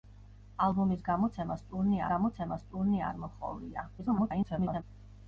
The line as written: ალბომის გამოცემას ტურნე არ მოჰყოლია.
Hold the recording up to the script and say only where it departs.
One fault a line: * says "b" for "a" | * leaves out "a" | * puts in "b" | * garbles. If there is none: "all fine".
* puts in "გამოცემას ტურნე"
* garbles